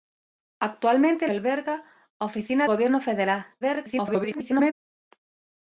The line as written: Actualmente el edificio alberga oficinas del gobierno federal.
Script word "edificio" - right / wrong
wrong